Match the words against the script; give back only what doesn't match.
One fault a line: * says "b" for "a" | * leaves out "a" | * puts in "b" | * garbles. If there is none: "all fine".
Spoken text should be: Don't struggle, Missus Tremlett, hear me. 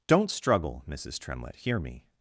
all fine